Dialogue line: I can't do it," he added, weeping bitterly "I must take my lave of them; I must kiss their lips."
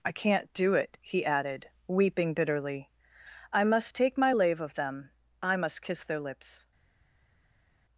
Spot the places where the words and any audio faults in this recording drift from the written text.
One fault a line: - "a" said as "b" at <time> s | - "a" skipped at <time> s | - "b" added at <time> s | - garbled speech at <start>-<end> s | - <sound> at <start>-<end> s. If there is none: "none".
none